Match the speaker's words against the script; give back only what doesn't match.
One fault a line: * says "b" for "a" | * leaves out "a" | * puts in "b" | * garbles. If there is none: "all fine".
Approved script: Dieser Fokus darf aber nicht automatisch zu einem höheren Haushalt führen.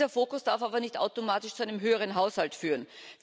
all fine